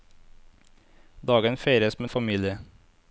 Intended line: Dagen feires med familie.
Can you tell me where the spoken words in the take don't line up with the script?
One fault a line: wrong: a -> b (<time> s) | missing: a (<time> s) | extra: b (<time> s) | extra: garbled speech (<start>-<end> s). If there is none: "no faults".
no faults